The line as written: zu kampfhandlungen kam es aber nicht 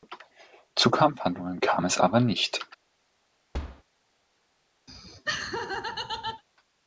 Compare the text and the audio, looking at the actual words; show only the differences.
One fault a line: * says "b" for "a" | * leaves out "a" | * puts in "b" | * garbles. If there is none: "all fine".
all fine